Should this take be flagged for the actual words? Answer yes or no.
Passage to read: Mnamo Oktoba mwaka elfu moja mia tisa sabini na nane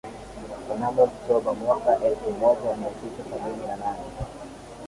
no